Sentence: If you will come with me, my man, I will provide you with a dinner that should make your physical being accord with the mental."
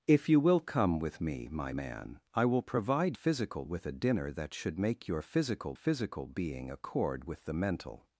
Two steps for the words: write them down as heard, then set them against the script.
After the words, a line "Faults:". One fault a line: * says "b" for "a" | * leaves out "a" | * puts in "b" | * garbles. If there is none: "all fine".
If you will come with me, my man, I will provide physical with a dinner that should make your physical physical being accord with the mental."
Faults:
* says "physical" for "you"
* puts in "physical"